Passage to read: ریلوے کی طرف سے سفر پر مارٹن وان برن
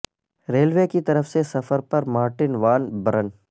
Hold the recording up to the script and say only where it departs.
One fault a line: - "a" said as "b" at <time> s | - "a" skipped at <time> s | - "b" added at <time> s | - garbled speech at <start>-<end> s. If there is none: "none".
none